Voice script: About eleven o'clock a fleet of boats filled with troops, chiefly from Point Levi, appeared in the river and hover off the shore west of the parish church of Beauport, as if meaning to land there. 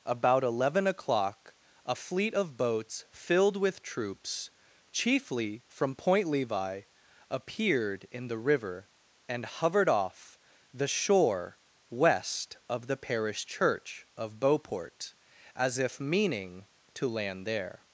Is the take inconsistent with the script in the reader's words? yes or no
yes